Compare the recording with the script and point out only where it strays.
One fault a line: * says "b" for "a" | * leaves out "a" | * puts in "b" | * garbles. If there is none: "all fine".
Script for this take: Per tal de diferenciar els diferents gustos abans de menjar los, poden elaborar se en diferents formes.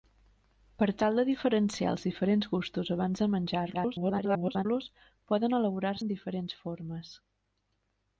* garbles
* leaves out "se"